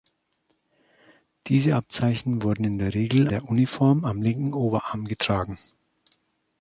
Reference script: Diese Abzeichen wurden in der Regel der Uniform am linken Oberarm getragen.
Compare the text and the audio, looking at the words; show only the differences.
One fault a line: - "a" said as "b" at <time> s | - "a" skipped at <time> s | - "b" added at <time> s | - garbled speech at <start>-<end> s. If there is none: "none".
none